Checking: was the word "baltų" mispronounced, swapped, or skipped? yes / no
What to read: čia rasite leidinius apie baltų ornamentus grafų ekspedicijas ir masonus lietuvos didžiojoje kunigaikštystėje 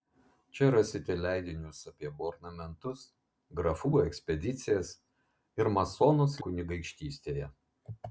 yes